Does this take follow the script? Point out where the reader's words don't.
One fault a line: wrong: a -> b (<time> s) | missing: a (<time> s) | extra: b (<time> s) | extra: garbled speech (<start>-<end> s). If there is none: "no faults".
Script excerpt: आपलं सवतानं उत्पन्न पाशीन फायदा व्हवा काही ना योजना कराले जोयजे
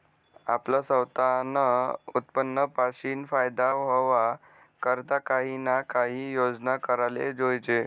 extra: करता (4.8 s)
extra: काही (5.9 s)